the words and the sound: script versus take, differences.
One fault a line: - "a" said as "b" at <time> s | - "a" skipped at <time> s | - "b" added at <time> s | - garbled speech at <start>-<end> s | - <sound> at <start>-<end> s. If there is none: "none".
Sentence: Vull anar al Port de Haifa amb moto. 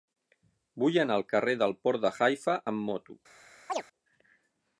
- "carrer del" added at 1.3 s
- chirp at 3.7-3.8 s